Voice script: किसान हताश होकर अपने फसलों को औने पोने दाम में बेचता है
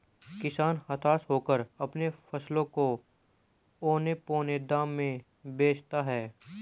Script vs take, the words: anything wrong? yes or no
no